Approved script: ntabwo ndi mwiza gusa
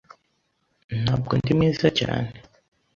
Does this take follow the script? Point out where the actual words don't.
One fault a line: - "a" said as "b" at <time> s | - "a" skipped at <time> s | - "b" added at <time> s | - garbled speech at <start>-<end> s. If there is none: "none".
- "gusa" said as "cyane" at 2.0 s